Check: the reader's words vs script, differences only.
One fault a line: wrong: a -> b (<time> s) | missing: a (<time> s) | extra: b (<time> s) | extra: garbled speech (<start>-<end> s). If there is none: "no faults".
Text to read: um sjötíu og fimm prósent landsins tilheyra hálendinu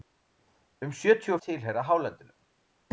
missing: fimm prósent landsins (1.4 s)